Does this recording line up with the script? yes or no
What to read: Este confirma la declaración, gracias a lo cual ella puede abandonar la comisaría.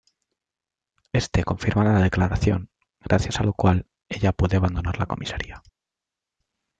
yes